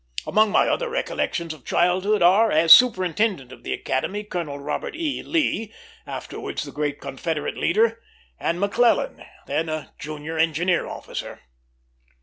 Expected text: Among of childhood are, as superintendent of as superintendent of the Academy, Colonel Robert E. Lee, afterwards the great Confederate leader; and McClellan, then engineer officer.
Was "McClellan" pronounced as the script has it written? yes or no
yes